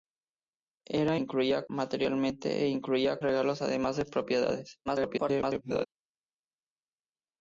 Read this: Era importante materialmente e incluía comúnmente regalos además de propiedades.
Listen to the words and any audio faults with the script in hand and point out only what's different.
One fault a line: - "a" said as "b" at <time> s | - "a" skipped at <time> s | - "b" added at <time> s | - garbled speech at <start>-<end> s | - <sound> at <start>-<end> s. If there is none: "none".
- "importante" said as "incluía" at 1.1 s
- "comúnmente" skipped at 3.2 s
- garbled speech at 4.9-5.9 s